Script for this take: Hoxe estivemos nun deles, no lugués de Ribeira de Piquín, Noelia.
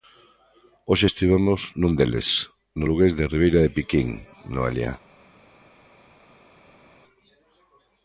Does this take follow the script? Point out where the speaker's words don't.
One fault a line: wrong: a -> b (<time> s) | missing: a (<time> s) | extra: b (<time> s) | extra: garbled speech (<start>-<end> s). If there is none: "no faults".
no faults